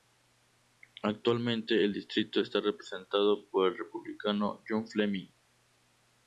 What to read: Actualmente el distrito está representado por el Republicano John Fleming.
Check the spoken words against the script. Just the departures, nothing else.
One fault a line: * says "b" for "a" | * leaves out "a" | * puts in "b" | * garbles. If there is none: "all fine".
all fine